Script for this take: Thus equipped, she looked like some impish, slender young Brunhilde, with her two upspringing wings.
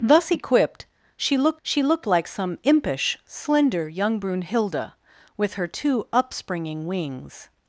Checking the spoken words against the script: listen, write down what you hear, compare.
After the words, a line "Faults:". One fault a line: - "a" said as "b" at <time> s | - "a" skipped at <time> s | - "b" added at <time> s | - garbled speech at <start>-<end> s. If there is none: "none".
Thus equipped, she looked she looked like some impish, slender young Brunhilde, with her two upspringing wings.
Faults:
- "she looked" added at 1.6 s